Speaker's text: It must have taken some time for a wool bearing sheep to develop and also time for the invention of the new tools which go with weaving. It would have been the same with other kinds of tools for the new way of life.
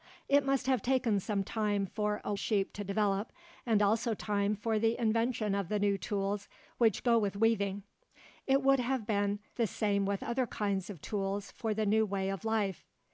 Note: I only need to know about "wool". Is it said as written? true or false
false